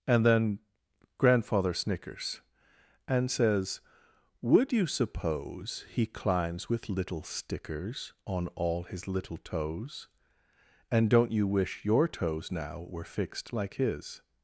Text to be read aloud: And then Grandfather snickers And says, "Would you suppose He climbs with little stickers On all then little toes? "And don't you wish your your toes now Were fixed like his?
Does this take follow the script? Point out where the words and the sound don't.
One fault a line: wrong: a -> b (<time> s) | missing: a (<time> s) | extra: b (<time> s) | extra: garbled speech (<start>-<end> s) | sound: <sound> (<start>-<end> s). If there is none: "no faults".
wrong: then -> his (8.8 s)
missing: your (12.1 s)